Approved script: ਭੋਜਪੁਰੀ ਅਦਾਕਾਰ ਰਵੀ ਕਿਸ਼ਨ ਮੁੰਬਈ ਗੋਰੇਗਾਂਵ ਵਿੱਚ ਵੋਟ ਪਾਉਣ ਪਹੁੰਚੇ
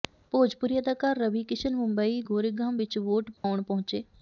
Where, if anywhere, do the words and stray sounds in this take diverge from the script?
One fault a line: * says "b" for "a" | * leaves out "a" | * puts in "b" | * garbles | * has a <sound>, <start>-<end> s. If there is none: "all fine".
* has a dropout, 3.4-3.4 s